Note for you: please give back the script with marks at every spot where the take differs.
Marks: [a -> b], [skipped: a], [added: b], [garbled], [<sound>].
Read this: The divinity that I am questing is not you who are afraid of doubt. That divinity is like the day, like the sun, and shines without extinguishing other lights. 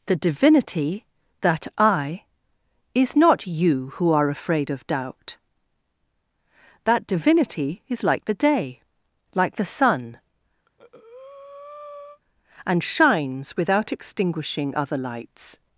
The divinity that I [skipped: am questing] is not you who are afraid of doubt. That divinity is like the day, like the sun, [breath] and shines without extinguishing other lights.